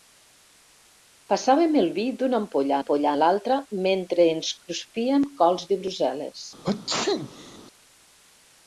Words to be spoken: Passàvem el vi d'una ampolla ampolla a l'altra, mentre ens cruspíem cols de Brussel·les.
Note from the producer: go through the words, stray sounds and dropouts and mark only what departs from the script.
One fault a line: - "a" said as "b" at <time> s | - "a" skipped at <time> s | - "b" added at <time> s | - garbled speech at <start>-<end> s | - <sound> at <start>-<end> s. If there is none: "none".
- sneeze at 6.6-7.6 s